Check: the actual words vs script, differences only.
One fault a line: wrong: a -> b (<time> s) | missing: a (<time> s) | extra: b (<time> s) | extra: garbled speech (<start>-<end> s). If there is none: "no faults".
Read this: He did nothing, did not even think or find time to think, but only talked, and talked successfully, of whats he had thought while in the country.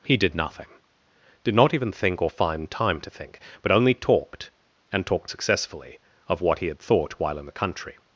wrong: whats -> what (6.4 s)